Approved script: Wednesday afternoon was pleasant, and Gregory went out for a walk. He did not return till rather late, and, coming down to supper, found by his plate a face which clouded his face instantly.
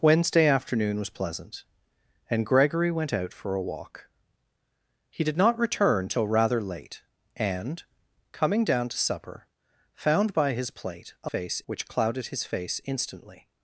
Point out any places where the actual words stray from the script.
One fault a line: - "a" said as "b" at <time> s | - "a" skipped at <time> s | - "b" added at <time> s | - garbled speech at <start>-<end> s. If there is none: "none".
none